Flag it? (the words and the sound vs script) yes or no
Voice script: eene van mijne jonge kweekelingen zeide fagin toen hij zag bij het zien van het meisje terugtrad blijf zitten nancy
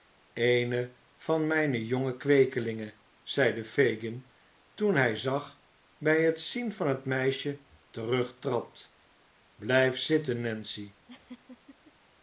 yes